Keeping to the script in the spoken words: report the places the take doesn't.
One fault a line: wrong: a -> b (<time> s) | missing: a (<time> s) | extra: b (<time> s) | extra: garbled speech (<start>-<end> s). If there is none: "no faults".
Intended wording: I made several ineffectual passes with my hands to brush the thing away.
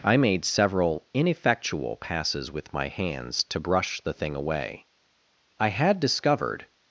extra: I had discovered (5.6 s)